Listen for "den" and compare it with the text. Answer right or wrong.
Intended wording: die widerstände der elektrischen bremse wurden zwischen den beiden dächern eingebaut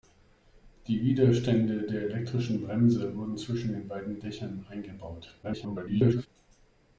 right